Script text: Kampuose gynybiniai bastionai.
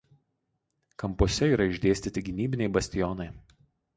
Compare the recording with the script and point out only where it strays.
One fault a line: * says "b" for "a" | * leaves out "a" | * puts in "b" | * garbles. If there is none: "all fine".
* puts in "yra išdėstyti"